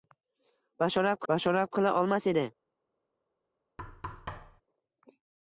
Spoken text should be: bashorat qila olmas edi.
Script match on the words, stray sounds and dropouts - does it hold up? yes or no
no